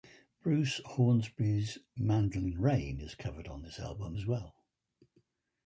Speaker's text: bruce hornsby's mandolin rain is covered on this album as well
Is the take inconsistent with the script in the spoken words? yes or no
no